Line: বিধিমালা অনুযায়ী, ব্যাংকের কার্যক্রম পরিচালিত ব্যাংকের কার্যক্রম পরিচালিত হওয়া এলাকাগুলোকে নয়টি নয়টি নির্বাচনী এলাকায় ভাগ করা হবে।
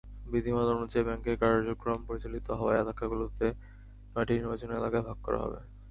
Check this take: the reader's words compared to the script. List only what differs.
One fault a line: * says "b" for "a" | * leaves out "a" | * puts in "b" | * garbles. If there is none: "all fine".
* leaves out "ব্যাংকের কার্যক্রম পরিচালিত"
* leaves out "নয়টি"